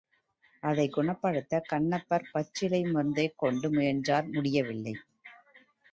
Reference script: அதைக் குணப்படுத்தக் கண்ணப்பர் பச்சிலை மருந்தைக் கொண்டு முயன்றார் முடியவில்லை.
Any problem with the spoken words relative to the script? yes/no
no